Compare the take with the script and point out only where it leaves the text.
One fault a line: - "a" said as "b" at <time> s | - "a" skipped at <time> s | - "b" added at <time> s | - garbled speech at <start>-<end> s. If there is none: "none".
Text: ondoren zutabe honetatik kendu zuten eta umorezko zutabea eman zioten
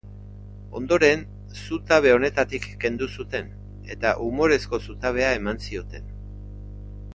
none